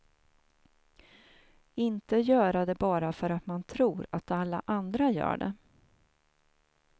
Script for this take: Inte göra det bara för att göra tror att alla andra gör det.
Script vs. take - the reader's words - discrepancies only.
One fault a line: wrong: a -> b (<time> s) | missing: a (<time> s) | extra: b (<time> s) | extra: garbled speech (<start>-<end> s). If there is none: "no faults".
wrong: göra -> man (3.5 s)